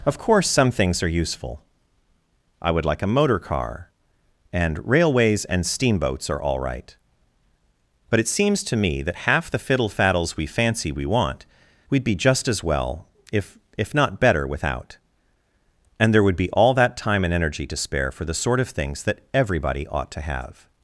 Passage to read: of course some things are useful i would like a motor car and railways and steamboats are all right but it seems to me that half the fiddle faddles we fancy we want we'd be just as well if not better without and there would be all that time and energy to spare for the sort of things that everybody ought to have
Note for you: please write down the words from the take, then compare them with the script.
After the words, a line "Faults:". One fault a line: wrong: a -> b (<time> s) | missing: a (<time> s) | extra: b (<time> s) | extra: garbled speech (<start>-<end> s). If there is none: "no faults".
of course some things are useful i would like a motor car and railways and steamboats are all right but it seems to me that half the fiddle faddles we fancy we want we'd be just as well if if not better without and there would be all that time and energy to spare for the sort of things that everybody ought to have
Faults:
extra: if (13.8 s)